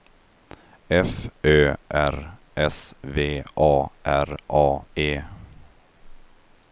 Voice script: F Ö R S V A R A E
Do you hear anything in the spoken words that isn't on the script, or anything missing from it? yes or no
no